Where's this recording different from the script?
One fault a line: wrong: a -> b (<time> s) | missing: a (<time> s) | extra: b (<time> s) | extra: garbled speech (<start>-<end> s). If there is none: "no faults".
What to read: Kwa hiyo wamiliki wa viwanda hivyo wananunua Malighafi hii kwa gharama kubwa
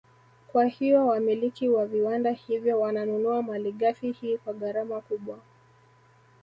no faults